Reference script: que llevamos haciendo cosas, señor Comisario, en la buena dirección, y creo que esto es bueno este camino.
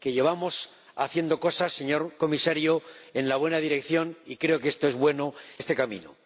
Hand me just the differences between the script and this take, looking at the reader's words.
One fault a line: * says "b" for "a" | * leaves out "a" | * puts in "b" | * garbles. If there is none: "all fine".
all fine